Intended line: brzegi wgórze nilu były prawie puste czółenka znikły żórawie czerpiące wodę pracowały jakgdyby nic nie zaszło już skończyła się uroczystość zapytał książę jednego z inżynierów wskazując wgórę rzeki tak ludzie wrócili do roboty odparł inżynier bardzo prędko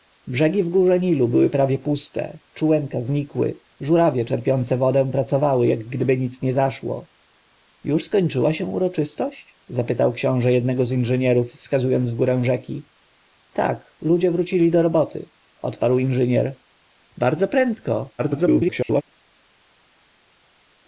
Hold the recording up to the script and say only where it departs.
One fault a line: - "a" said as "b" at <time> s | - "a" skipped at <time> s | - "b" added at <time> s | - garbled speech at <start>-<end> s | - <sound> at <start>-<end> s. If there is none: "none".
- garbled speech at 18.2-19.0 s